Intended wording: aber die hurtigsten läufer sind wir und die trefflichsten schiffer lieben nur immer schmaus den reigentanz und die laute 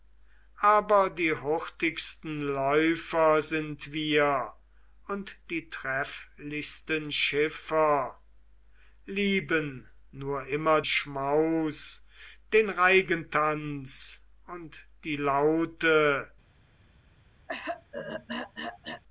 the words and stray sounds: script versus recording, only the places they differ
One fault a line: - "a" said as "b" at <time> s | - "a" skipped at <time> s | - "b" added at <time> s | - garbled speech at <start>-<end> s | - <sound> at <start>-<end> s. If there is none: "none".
- throat clearing at 17.5-19.0 s